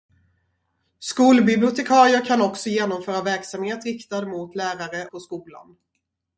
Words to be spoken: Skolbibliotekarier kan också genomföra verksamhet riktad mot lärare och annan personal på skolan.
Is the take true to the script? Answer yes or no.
no